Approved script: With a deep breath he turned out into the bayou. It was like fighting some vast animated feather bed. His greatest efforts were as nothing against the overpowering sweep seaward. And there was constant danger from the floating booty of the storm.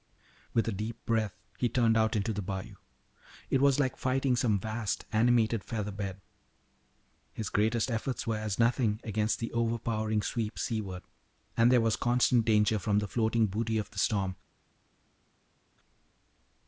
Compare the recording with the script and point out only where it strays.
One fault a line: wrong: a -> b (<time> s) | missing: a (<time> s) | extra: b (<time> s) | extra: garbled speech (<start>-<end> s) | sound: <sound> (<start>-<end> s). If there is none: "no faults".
no faults